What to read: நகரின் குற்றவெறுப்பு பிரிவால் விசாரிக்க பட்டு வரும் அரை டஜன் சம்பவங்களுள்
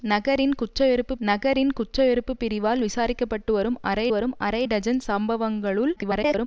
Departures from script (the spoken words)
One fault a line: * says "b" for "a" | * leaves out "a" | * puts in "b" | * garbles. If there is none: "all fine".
* puts in "நகரின் குற்றவெறுப்பு"
* puts in "வரும் அரை"
* garbles